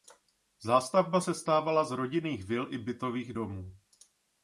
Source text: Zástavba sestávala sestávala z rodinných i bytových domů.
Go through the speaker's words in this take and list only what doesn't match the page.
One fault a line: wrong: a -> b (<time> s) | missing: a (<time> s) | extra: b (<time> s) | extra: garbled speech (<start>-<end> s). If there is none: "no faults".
missing: sestávala (1.8 s)
extra: vil (2.4 s)